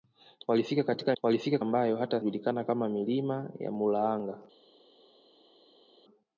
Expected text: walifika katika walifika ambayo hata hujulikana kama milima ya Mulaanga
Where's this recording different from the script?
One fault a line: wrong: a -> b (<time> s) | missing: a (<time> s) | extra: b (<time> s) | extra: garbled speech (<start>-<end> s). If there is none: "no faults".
no faults